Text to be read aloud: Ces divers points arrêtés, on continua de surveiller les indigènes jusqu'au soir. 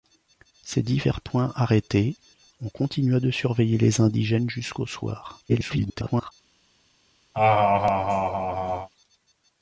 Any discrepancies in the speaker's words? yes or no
yes